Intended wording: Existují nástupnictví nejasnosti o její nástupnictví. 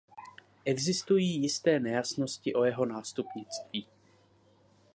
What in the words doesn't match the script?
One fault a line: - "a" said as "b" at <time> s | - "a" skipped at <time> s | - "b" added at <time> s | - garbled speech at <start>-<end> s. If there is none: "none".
- "nástupnictví" said as "jisté" at 1.4 s
- "její" said as "jeho" at 2.6 s